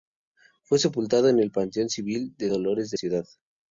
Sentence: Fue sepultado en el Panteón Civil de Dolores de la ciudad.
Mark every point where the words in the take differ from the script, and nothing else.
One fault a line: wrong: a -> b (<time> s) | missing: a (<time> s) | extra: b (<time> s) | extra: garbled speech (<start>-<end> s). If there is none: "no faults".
missing: la (3.0 s)